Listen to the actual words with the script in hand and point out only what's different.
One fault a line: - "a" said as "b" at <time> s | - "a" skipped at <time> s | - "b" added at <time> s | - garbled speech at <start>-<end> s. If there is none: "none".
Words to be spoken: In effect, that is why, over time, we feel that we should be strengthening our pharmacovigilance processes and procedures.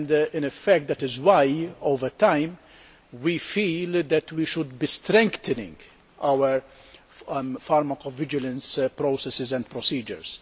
none